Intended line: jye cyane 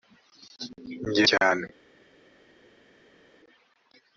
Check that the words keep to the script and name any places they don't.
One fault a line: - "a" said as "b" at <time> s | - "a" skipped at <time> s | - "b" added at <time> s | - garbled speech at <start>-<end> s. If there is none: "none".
none